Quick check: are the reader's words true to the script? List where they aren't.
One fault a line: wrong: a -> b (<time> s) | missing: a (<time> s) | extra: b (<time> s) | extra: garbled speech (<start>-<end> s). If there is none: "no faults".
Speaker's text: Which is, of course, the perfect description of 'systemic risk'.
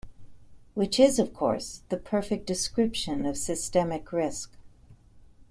no faults